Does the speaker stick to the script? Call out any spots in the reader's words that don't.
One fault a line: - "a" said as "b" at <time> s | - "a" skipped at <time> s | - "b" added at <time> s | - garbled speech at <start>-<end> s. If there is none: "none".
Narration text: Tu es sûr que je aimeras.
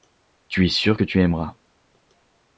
- "je" said as "tu" at 1.0 s